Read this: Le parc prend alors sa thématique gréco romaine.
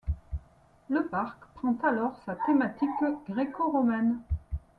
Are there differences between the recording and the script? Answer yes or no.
no